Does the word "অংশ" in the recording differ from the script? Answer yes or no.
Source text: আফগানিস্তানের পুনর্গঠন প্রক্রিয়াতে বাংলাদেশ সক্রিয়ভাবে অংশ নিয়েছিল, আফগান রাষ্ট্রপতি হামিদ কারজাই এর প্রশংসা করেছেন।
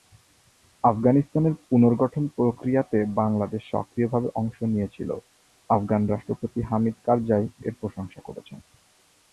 no